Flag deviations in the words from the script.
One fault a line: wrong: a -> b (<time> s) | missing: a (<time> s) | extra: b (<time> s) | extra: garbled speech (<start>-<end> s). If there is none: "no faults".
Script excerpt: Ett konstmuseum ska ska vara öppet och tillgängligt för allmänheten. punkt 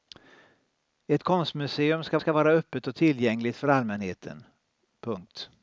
no faults